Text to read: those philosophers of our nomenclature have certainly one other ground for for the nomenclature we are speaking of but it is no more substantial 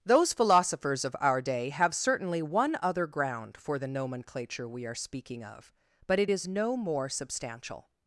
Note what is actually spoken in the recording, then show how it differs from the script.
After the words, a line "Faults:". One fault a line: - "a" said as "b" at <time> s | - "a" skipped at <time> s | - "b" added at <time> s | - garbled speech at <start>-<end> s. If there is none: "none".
those philosophers of our day have certainly one other ground for the nomenclature we are speaking of but it is no more substantial
Faults:
- "nomenclature" said as "day" at 1.4 s
- "for" skipped at 3.8 s